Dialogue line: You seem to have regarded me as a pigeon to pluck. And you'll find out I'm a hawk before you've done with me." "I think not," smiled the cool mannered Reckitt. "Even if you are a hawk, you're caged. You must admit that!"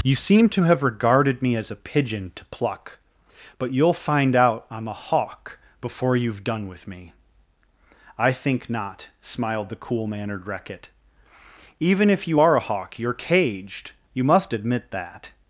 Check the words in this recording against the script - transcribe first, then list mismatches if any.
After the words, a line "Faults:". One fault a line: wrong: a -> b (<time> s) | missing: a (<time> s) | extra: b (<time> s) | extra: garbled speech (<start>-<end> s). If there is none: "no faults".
You seem to have regarded me as a pigeon to pluck. But you'll find out I'm a hawk before you've done with me." "I think not," smiled the cool mannered Reckitt. "Even if you are a hawk, you're caged. You must admit that!"
Faults:
wrong: And -> But (3.6 s)